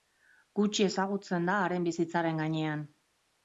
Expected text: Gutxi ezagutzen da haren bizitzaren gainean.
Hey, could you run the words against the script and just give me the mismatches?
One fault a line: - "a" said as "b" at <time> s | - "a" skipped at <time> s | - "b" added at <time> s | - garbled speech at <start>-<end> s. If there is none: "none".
none